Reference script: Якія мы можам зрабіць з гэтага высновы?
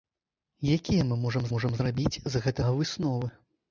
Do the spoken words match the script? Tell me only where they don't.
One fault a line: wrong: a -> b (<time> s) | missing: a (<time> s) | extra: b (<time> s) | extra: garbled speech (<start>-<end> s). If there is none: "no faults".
extra: можам (1.6 s)